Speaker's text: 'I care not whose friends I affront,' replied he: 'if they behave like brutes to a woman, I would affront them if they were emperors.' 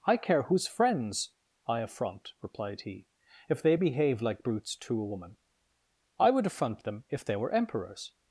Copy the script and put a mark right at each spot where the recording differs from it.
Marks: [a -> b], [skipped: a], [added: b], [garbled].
'I care [skipped: not] whose friends I affront,' replied he: 'if they behave like brutes to a woman, I would affront them if they were emperors.'